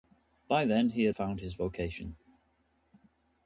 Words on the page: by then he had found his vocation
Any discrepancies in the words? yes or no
no